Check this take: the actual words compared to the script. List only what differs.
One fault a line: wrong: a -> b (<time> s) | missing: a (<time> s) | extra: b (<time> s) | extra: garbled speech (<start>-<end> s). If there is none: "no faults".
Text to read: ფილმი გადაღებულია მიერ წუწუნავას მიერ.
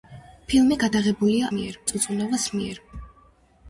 no faults